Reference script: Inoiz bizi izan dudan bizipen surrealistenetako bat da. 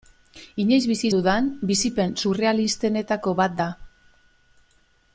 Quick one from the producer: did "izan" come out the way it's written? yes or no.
no